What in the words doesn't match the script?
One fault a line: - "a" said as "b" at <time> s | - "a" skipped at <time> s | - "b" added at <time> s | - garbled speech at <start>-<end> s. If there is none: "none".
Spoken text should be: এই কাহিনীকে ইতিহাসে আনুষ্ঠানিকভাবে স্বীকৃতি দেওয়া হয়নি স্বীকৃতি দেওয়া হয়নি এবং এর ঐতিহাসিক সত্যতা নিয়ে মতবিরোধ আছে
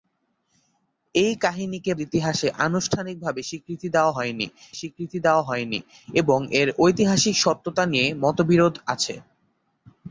none